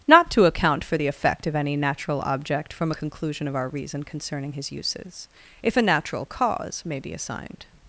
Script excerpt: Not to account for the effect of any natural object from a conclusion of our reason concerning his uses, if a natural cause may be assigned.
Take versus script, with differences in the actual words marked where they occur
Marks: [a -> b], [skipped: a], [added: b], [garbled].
Not to account for the effect of any natural object from a conclusion of our reason concerning his uses, if a natural cause may be assigned.